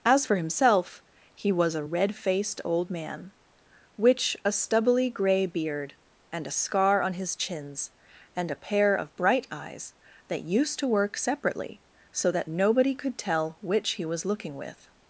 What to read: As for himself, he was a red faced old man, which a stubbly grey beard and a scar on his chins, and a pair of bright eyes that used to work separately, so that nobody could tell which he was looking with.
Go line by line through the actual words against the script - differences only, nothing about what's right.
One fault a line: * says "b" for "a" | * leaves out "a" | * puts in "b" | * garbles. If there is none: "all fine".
all fine